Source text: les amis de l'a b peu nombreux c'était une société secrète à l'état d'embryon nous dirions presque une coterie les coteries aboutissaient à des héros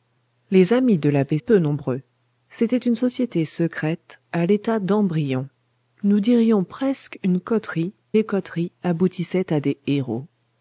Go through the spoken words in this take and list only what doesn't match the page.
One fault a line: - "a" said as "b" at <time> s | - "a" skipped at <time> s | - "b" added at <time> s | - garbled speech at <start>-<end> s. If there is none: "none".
none